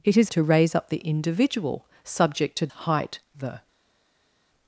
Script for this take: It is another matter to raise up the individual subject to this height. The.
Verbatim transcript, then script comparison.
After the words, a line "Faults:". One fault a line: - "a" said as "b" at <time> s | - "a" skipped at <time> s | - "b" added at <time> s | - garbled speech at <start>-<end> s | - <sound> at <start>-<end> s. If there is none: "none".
It is to raise up the individual subject to height. The.
Faults:
- "another matter" skipped at 0.3 s
- "this" skipped at 2.7 s